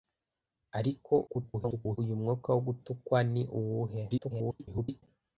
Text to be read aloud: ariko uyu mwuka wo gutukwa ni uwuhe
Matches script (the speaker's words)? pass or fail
fail